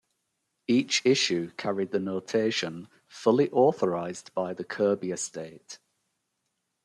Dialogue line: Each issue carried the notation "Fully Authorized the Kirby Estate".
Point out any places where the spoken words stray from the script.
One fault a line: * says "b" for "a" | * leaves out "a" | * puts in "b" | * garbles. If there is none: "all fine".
* puts in "by"